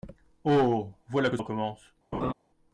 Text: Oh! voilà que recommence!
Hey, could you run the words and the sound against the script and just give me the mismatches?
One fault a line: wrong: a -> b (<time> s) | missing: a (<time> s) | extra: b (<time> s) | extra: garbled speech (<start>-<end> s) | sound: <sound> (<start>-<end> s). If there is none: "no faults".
sound: laugh (2.1-2.3 s)